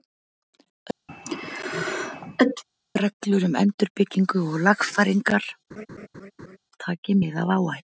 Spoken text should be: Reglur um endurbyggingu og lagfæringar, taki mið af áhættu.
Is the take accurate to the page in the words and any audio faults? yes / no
no